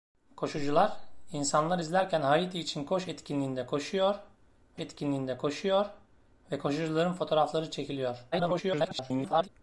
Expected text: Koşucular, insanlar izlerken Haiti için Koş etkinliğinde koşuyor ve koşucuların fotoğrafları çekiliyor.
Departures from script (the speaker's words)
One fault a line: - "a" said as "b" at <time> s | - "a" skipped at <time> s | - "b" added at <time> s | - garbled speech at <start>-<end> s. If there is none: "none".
- "etkinliğinde koşuyor" added at 4.8 s
- garbled speech at 8.3-9.5 s